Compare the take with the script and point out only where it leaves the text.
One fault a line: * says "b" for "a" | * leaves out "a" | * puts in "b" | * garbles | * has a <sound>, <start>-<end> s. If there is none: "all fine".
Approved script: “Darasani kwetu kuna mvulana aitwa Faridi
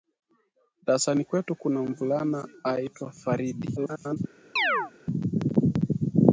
* garbles
* has a chirp, 4.6-4.9 s